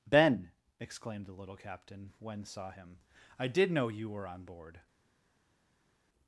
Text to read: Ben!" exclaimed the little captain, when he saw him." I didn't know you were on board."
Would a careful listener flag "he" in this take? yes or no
yes